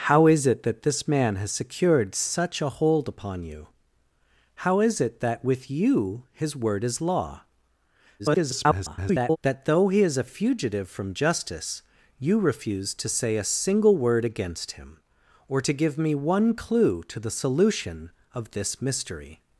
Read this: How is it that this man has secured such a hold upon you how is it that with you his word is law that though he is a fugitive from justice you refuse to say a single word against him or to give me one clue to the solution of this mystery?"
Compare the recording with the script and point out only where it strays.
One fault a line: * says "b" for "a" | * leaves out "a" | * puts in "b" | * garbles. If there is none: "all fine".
* garbles